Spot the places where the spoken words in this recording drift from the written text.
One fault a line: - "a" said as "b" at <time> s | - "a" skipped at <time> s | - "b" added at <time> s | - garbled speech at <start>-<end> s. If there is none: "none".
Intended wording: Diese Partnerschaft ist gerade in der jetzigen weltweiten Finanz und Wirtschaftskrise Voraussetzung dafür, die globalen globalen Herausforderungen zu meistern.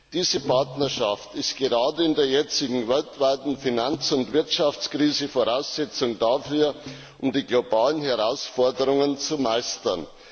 - "globalen" skipped at 8.0 s